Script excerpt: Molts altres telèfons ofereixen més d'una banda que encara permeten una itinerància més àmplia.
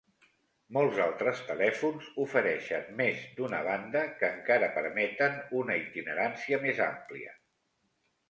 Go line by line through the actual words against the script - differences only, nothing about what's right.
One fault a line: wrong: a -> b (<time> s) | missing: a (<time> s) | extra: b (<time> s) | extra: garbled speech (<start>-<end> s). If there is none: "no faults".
no faults